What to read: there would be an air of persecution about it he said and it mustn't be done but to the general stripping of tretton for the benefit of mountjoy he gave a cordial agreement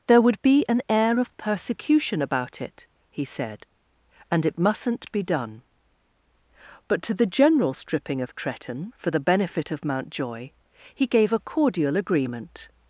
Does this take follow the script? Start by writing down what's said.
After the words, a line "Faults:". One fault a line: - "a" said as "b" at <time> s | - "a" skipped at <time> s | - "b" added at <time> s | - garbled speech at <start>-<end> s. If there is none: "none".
there would be an air of persecution about it he said and it mustn't be done but to the general stripping of tretton for the benefit of mountjoy he gave a cordial agreement
Faults:
none